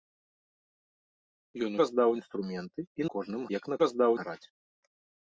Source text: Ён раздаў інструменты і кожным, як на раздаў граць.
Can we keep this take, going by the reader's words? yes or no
yes